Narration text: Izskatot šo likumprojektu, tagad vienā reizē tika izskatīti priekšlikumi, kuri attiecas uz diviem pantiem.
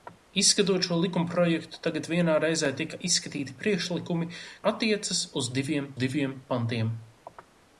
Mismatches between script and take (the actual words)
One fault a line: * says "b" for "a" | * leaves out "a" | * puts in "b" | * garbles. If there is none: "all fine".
* leaves out "kuri"
* puts in "diviem"